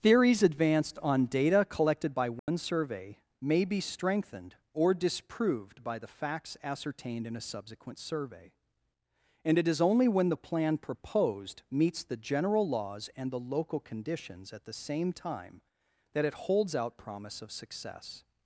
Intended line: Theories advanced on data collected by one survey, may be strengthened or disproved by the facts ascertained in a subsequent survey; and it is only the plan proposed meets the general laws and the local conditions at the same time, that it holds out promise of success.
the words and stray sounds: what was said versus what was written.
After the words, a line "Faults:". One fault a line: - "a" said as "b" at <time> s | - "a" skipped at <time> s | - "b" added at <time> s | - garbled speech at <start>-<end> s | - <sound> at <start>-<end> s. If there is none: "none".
Theories advanced on data collected by one survey, may be strengthened or disproved by the facts ascertained in a subsequent survey; and it is only when the plan proposed meets the general laws and the local conditions at the same time, that it holds out promise of success.
Faults:
- dropout at 2.4-2.5 s
- "when" added at 10.1 s